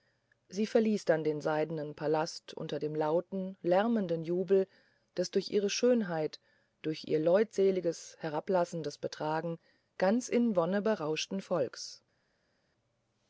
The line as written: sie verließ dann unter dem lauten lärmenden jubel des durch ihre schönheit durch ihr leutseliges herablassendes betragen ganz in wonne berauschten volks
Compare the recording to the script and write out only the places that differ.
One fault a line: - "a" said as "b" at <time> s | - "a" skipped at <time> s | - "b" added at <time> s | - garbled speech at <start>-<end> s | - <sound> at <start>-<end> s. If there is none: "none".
- "den seidnen palast" added at 1.2 s